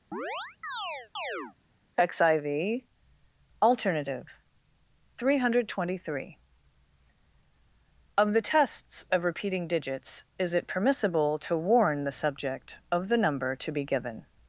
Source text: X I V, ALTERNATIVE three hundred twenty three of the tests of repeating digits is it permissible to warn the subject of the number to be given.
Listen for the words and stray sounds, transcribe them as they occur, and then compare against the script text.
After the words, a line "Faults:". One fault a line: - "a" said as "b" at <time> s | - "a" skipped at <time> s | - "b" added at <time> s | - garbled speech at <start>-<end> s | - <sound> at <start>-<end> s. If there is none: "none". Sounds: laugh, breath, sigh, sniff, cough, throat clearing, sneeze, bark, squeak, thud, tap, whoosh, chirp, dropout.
X I V, ALTERNATIVE three hundred twenty three of the tests of repeating digits is it permissible to warn the subject of the number to be given.
Faults:
- chirp at 0.1-1.6 s